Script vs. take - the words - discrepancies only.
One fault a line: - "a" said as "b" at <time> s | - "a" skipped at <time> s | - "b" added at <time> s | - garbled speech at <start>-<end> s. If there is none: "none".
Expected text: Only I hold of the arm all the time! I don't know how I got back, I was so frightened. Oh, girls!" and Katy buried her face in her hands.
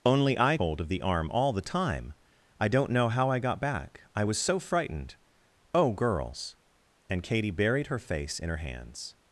none